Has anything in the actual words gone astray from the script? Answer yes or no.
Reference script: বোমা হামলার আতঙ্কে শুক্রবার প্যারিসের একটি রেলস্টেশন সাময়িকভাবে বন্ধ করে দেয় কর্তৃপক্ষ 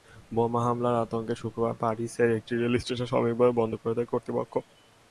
no